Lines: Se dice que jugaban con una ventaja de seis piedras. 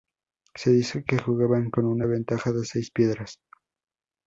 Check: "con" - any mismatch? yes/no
no